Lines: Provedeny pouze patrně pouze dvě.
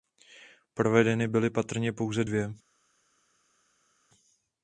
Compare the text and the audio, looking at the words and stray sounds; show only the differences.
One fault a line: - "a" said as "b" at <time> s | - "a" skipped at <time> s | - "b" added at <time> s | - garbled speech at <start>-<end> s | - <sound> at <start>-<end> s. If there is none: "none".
- "pouze" said as "byly" at 1.3 s